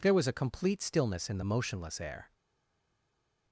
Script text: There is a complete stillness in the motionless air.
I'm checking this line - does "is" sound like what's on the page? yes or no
no